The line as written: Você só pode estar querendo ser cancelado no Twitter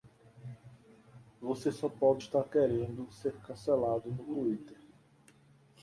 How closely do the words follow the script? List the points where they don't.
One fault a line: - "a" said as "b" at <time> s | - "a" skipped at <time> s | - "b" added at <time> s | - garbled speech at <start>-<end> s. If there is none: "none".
none